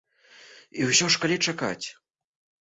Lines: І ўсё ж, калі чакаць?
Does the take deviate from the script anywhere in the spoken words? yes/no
no